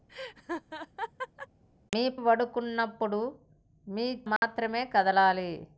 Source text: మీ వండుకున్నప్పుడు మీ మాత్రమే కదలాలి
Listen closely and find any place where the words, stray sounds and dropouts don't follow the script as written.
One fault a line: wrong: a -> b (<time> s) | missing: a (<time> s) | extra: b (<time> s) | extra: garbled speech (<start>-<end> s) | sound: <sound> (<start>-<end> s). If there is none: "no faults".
sound: laugh (0.1-1.5 s)
sound: dropout (4.4-4.4 s)